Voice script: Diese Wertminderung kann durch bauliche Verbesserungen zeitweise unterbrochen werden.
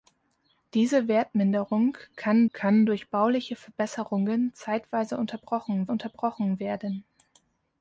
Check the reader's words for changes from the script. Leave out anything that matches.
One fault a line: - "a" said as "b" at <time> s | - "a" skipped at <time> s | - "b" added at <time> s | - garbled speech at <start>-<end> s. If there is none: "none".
- "kann" added at 2.5 s
- "unterbrochen" added at 5.9 s